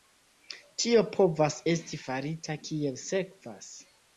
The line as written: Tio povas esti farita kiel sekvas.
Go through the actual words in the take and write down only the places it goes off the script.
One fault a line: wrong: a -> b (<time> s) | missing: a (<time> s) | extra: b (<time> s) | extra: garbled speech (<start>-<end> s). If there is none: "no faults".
no faults